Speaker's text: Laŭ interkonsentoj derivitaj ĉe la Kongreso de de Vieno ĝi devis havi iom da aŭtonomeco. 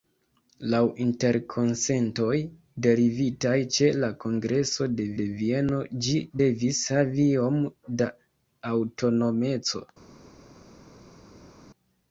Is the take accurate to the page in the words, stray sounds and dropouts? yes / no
yes